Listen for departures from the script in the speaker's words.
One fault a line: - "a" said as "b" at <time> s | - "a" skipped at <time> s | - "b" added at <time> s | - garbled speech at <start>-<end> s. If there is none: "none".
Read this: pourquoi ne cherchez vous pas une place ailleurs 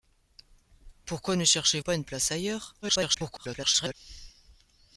- "vous" skipped at 1.8 s
- garbled speech at 2.8-3.9 s